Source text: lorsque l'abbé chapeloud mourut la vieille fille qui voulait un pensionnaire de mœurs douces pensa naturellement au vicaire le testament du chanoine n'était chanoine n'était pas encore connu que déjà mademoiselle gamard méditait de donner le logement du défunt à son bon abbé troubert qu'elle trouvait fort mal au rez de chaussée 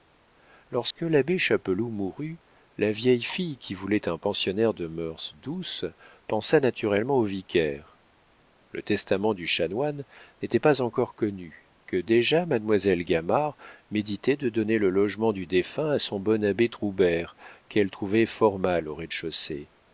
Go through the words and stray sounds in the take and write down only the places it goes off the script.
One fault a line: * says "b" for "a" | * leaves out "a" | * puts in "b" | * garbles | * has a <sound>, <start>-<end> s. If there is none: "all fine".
* has a dropout, 0.9-1.0 s
* leaves out "chanoine n'était"